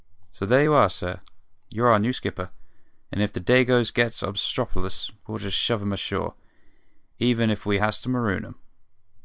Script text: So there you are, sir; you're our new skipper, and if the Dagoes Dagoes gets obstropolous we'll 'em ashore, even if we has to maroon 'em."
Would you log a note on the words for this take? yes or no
yes